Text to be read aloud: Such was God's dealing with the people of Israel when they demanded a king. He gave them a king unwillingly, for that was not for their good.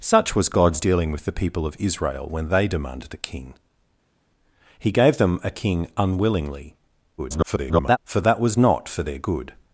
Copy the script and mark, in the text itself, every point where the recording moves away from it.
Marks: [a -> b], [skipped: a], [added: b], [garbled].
Such was God's dealing with the people of Israel when they demanded a king. He gave them a king unwillingly, [garbled] for that was not for their good.